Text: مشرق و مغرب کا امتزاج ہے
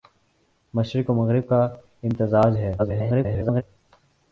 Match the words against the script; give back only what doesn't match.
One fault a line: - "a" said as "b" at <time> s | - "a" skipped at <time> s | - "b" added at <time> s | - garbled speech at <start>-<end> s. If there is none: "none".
- garbled speech at 2.8-3.6 s